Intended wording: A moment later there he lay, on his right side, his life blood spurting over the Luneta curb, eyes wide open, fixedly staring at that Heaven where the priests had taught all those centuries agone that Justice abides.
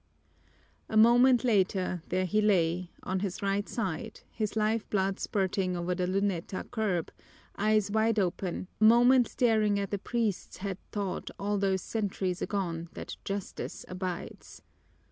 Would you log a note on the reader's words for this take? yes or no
yes